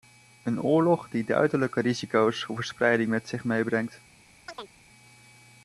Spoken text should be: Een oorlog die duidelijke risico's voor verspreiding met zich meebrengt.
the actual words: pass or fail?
pass